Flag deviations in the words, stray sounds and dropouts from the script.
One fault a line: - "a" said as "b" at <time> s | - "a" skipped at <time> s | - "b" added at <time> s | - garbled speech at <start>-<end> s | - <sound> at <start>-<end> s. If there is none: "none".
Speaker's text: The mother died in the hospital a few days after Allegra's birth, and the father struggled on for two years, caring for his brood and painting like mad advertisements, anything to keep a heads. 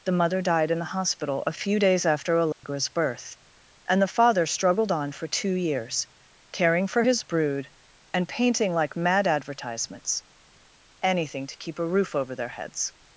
- dropout at 2.5-2.6 s
- "roof over their" added at 11.9 s